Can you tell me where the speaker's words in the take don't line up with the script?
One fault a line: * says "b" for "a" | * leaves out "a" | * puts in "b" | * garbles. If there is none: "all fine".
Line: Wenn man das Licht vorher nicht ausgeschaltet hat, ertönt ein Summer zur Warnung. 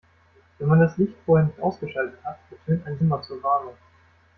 all fine